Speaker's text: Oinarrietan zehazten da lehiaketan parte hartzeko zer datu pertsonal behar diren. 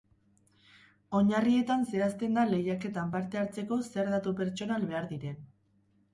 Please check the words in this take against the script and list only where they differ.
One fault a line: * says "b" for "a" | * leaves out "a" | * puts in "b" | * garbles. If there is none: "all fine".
all fine